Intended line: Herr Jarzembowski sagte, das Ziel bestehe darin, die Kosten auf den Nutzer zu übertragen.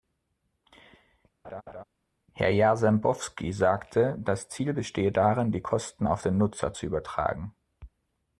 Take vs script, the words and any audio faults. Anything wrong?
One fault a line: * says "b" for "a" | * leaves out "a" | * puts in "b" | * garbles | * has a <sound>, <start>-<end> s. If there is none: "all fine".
* has a laugh, 1.4-1.8 s